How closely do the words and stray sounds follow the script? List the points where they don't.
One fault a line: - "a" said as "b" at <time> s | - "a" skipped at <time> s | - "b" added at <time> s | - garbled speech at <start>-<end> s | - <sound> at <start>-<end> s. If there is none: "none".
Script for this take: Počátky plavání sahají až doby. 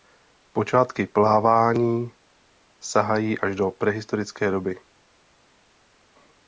- "do prehistorické" added at 3.5 s